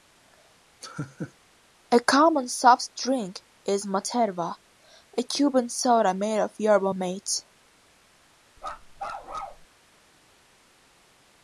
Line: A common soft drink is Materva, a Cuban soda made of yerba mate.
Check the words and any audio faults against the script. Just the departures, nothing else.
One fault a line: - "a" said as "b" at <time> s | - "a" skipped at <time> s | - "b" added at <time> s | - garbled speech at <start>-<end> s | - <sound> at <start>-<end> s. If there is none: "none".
- laugh at 0.8-1.3 s
- bark at 8.6-9.7 s